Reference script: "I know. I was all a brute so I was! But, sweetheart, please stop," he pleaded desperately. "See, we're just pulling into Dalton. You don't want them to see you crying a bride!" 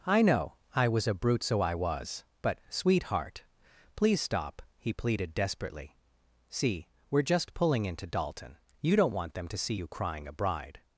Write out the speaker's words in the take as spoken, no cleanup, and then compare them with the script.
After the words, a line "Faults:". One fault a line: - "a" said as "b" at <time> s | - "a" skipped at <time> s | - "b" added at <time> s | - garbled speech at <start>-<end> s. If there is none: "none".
"I know. I was a brute so I was! But, sweetheart, please stop," he pleaded desperately. "See, we're just pulling into Dalton. You don't want them to see you crying a bride!"
Faults:
- "all" skipped at 1.1 s